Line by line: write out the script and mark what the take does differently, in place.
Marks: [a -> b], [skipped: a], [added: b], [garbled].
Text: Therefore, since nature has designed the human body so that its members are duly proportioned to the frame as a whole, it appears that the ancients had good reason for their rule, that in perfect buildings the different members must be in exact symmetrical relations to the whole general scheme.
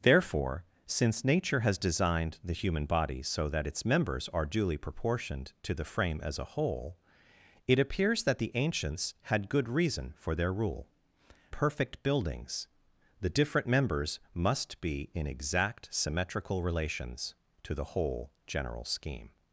Therefore, since nature has designed the human body so that its members are duly proportioned to the frame as a whole, it appears that the ancients had good reason for their rule, [skipped: that in] perfect buildings the different members must be in exact symmetrical relations to the whole general scheme.